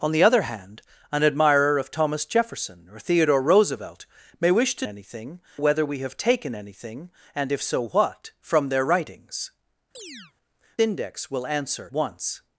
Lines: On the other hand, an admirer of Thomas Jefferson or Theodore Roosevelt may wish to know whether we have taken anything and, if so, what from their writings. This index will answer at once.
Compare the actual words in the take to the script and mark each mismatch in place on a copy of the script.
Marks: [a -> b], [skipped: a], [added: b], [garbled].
On the other hand, an admirer of Thomas Jefferson or Theodore Roosevelt may wish to [know -> anything] whether we have taken anything and, if so, what from their writings. [skipped: This] index will answer [skipped: at] once.